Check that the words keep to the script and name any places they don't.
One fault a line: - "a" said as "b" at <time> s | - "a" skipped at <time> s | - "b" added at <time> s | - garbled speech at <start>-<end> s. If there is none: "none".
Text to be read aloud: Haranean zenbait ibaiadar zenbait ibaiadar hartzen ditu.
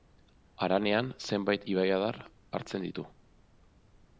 - "zenbait ibaiadar" skipped at 2.2 s